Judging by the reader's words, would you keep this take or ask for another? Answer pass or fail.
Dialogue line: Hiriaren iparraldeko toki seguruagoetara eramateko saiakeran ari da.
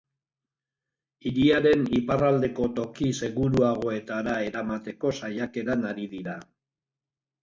fail